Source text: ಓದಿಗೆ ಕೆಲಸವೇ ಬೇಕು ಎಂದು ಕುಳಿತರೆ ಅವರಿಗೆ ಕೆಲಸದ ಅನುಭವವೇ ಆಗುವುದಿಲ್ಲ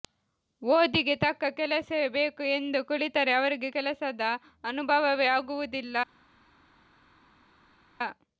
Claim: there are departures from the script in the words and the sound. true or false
true